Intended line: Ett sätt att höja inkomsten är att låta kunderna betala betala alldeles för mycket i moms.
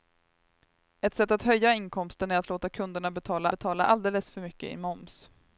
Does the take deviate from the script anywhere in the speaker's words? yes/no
no